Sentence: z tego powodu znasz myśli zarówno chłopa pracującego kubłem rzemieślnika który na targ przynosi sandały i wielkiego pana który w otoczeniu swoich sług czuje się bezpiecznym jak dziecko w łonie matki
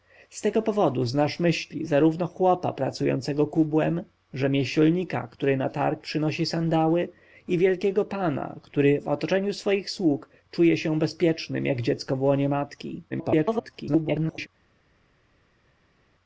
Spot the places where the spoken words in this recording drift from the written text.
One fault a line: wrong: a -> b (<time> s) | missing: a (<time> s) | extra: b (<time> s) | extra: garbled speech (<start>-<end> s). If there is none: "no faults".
extra: garbled speech (13.1-14.5 s)